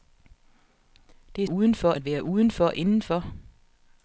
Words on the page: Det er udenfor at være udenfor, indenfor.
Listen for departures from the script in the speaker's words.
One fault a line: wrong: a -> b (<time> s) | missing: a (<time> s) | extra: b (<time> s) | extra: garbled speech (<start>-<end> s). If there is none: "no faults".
no faults